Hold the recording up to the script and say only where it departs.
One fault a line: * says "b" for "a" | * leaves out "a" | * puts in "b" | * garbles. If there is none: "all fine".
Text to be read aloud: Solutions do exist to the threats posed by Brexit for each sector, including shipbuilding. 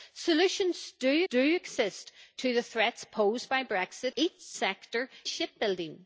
* puts in "do"
* leaves out "for"
* leaves out "including"